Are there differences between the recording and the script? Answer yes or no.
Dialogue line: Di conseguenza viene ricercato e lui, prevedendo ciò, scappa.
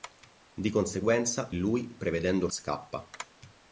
yes